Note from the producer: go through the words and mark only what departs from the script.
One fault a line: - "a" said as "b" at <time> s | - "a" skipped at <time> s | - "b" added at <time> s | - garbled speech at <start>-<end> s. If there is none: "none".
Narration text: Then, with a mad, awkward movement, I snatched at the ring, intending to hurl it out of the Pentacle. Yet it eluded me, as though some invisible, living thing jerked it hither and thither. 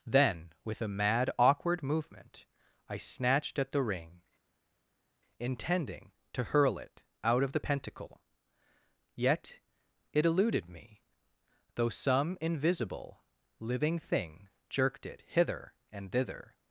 - "as" skipped at 11.0 s